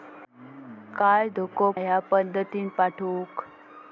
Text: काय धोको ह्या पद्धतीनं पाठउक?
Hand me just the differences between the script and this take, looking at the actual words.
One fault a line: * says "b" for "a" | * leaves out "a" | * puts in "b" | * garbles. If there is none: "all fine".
all fine